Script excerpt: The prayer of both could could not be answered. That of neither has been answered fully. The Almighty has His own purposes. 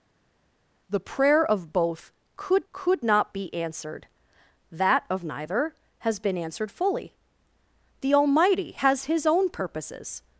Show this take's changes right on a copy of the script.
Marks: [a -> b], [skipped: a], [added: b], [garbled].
The prayer of both could could not be answered. That of neither has been answered fully. The Almighty has His own purposes.